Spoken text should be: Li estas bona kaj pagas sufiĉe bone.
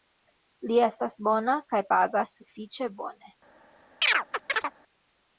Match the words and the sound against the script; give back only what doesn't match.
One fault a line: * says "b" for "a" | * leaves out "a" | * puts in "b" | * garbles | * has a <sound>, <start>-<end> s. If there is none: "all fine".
* has a chirp, 4.0-4.7 s